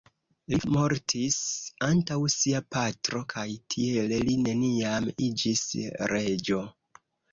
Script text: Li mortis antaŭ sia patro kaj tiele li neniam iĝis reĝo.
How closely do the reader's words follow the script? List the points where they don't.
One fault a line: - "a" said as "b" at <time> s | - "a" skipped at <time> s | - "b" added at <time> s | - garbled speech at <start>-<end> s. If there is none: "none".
none